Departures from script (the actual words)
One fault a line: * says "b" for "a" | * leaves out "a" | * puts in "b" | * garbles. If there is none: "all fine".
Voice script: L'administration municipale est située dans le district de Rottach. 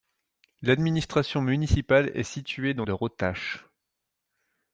* leaves out "le district"